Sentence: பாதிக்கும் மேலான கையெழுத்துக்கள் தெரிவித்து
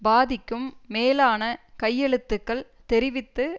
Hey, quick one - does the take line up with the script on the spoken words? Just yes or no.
yes